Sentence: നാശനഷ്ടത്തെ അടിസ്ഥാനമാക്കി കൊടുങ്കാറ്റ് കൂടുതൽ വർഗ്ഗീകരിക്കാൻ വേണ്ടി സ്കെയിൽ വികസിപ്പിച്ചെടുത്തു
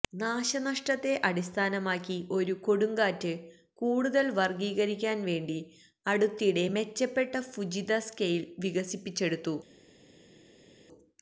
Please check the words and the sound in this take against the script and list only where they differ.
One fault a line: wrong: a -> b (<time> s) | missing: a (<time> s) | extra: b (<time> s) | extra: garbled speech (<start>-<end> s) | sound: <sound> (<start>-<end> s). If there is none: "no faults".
extra: ഒരു (2.3 s)
extra: അടുത്തിടെ മെച്ചപ്പെട്ട ഫുജിത (6.0 s)